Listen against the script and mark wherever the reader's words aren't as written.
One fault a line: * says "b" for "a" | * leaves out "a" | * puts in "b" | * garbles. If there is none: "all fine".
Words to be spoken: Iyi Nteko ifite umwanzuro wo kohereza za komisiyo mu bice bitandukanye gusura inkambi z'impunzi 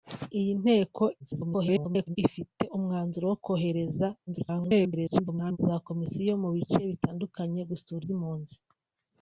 * garbles
* garbles
* leaves out "inkambi"